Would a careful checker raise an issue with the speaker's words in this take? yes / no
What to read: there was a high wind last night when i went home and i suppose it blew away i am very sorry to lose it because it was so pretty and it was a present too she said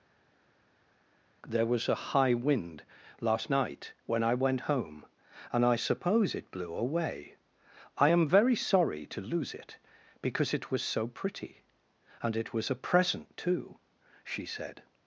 no